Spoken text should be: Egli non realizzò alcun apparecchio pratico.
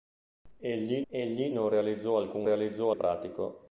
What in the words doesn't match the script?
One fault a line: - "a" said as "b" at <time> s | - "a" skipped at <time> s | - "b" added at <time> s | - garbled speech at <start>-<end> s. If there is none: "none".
- "egli" added at 1.1 s
- "apparecchio" said as "realizzò" at 2.4 s